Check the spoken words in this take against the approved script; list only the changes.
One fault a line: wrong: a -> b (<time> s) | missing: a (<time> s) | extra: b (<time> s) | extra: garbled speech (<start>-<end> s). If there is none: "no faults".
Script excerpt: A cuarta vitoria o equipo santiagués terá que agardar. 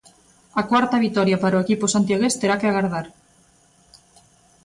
extra: para (1.4 s)